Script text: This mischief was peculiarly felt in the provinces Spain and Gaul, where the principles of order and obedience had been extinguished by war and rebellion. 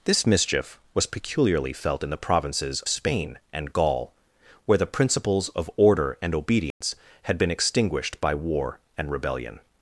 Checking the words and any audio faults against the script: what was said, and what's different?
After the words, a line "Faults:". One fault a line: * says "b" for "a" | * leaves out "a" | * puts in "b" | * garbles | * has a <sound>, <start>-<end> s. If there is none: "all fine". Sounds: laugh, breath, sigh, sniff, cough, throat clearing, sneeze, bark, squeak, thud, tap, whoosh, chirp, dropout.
This mischief was peculiarly felt in the provinces Spain and Gaul, where the principles of order and obedience had been extinguished by war and rebellion.
Faults:
* has a dropout, 6.7-6.8 s